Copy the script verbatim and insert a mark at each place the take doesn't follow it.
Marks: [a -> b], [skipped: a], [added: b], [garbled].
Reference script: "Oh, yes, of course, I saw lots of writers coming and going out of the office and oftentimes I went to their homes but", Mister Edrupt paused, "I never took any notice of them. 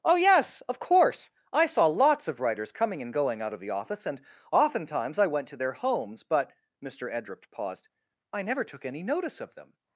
"Oh, yes, of course, I saw lots of writers coming and going out of the office and oftentimes I went to their homes but", Mister Edrupt paused, "I never took any notice of them.